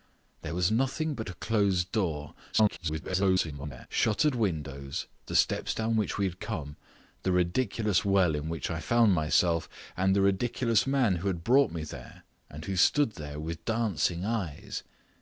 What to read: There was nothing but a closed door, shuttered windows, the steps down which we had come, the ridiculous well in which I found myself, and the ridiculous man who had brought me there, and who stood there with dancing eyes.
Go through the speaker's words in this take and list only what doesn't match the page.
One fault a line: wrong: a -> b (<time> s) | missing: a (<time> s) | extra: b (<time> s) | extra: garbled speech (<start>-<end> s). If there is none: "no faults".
extra: garbled speech (2.5-3.9 s)